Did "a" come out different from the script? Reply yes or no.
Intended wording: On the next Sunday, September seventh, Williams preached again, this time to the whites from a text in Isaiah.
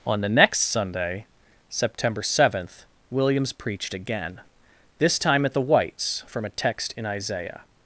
no